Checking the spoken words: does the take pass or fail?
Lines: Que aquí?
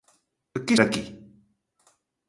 pass